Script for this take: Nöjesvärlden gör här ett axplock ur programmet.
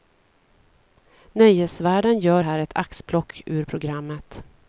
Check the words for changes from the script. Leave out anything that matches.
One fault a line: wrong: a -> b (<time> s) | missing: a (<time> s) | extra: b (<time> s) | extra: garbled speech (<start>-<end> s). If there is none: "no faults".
no faults